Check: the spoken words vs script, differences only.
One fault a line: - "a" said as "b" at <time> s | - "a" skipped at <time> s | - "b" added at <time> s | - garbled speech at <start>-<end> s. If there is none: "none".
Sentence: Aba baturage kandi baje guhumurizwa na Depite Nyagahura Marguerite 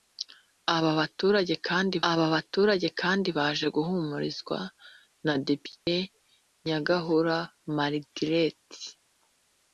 - "aba baturage kandi" added at 2.1 s